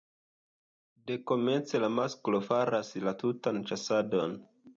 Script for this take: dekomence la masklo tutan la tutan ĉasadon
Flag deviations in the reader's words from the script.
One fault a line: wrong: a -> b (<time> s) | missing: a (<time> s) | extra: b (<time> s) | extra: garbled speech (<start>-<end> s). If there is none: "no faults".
wrong: tutan -> faras (2.5 s)